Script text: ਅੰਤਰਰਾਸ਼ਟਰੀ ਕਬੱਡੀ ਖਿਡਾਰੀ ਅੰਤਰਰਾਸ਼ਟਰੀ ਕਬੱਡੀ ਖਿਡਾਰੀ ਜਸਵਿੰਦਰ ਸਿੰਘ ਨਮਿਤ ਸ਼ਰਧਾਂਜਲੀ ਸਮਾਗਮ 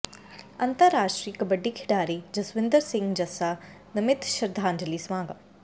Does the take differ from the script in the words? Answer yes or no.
yes